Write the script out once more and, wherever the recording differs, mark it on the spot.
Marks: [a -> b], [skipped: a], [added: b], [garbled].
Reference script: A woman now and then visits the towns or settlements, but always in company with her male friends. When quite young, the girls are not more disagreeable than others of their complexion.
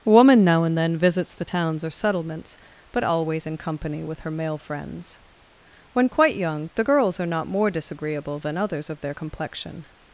[skipped: A] woman now and then visits the towns or settlements, but always in company with her male friends. When quite young, the girls are not more disagreeable than others of their complexion.